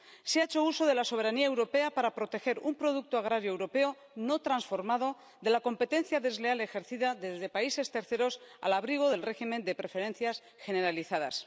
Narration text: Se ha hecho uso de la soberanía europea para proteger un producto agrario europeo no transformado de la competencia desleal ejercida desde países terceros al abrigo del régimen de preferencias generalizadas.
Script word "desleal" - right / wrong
right